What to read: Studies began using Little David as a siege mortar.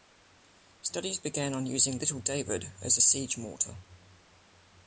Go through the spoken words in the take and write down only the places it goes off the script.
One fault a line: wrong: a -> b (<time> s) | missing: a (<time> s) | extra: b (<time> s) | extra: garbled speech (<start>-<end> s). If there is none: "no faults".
extra: on (1.5 s)